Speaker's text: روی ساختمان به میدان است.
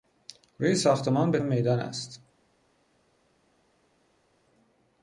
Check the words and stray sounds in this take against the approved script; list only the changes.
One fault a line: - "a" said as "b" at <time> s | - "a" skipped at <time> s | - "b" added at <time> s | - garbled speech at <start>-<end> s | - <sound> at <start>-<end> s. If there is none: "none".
none